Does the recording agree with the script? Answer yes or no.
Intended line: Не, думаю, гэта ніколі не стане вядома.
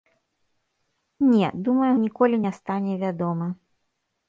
no